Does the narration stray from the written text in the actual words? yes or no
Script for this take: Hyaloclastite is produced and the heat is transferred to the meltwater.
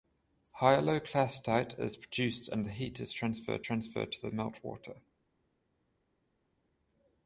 yes